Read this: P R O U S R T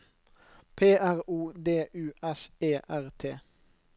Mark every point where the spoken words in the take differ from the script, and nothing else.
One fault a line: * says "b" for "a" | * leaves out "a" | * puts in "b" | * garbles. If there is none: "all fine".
* puts in "D"
* puts in "E"